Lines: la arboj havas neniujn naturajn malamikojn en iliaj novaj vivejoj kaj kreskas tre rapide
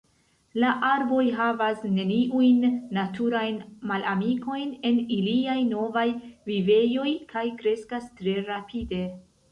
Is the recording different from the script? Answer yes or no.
no